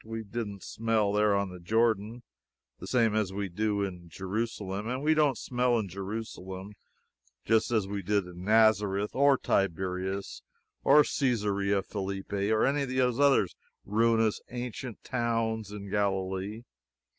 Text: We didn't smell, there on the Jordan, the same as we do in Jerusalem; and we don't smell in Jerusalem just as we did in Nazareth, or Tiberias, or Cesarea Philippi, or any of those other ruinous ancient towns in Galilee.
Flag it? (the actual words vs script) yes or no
no